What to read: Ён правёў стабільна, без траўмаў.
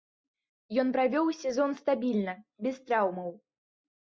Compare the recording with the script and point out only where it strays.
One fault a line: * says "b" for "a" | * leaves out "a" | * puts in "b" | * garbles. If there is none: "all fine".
* puts in "сезон"